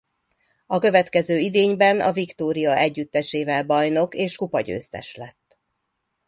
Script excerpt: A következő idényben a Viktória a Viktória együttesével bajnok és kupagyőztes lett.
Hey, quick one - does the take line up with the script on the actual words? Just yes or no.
no